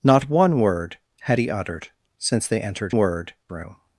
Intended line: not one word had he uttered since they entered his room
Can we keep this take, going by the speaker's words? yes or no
no